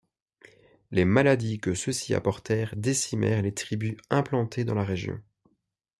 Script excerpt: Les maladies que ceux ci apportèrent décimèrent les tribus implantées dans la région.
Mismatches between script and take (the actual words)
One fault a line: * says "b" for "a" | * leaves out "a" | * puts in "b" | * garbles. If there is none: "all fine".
all fine